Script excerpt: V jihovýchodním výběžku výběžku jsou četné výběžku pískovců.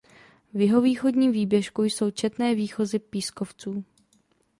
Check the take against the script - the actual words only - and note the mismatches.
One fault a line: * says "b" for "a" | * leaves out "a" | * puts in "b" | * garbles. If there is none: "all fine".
* leaves out "výběžku"
* says "výchozy" for "výběžku"